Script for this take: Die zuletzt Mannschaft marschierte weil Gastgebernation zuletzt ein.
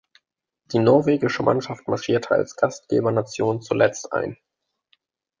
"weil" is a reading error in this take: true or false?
true